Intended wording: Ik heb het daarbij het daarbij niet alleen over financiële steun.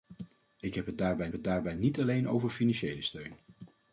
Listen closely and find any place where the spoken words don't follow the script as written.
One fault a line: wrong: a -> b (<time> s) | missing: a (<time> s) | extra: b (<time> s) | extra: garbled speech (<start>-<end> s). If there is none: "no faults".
no faults